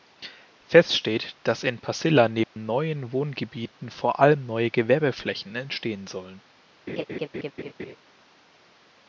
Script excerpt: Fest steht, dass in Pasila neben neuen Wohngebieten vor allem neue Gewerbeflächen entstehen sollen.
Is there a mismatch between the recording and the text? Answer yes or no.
no